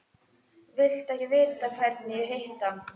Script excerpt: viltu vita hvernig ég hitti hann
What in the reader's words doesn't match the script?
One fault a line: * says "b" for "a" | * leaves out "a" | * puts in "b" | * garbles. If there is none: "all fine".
* puts in "ekki"